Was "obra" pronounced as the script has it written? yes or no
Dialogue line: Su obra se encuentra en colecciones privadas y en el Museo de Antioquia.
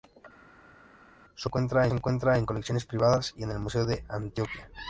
no